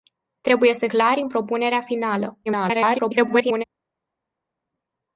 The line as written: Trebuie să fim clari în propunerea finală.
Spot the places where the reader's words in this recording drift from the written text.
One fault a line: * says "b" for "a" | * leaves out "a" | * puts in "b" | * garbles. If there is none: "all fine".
* leaves out "fim"
* garbles